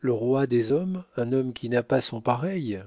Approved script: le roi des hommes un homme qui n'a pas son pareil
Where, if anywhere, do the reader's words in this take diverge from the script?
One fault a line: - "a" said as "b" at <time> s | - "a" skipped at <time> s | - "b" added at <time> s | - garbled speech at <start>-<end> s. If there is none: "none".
none